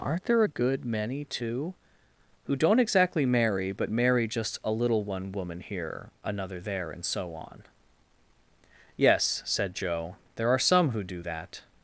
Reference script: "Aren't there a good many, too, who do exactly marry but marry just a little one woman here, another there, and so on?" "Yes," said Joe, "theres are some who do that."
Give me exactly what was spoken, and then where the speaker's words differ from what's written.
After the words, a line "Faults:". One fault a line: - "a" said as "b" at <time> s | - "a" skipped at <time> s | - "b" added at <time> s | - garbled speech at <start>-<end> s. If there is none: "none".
"Aren't there a good many, too, who don't exactly marry but marry just a little one woman here, another there, and so on?" "Yes," said Joe, "there are some who do that."
Faults:
- "do" said as "don't" at 2.5 s
- "theres" said as "there" at 10.3 s